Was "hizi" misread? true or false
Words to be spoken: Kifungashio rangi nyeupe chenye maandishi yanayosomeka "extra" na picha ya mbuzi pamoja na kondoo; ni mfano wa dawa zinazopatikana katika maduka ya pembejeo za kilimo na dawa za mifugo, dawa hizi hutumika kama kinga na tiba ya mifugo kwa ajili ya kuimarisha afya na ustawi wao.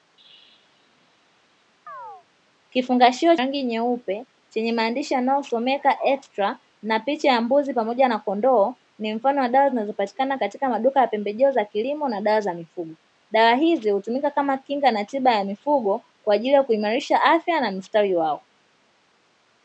false